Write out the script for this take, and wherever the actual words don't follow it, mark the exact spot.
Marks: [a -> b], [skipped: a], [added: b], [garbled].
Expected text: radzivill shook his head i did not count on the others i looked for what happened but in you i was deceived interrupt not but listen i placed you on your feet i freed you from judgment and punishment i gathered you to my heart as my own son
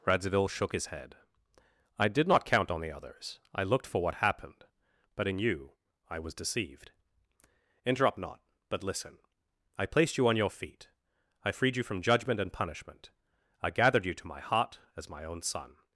radzivill shook his head i did not count on the others i looked for what happened but in you i was deceived interrupt not but listen i placed you on your feet i freed you from judgment and punishment i gathered you to my heart as my own son